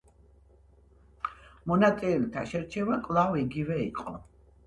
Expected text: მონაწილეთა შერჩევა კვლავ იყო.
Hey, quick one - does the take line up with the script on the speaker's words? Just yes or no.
no